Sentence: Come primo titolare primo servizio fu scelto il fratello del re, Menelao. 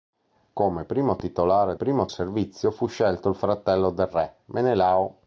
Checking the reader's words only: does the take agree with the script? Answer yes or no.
yes